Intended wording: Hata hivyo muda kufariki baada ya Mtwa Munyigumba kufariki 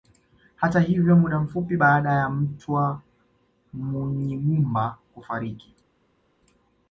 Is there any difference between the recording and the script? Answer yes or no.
yes